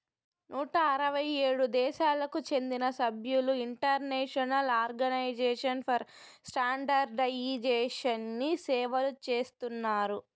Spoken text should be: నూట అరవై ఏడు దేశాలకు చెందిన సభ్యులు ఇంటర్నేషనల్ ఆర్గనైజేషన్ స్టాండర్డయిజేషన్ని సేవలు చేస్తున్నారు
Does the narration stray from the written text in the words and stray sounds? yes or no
yes